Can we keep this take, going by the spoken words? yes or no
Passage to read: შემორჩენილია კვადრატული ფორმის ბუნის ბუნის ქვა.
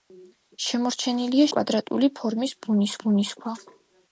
yes